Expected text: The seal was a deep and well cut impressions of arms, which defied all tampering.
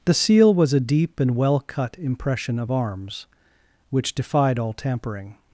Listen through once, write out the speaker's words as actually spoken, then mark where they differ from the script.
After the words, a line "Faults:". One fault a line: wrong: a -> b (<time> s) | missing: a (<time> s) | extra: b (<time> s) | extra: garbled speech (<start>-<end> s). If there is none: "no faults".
The seal was a deep and well cut impression of arms, which defied all tampering.
Faults:
wrong: impressions -> impression (2.0 s)